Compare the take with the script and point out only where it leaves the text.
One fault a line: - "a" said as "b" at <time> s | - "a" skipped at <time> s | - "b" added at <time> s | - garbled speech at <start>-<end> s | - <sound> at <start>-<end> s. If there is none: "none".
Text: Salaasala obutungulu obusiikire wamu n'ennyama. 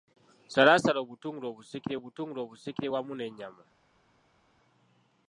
- "obutungulu obusiikire" added at 2.0 s